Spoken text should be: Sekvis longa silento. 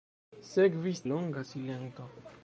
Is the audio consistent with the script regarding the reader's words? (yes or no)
yes